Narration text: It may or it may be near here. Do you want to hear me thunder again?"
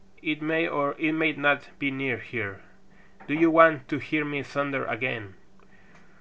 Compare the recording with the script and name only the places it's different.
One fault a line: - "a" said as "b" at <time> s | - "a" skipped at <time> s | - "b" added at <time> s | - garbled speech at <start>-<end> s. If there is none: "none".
- "not" added at 1.3 s